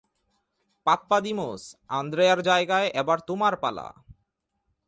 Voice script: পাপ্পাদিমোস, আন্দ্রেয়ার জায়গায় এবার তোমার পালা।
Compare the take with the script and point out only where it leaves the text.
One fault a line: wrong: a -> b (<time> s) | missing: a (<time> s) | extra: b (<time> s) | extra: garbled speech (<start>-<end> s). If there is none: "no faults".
no faults